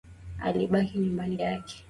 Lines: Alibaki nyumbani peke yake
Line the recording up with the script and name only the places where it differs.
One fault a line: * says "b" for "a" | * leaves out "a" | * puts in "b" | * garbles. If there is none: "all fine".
* leaves out "peke"